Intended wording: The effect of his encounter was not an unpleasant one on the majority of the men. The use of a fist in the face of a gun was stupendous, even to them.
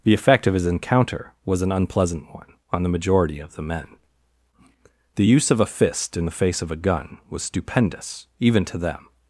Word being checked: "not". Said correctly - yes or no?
no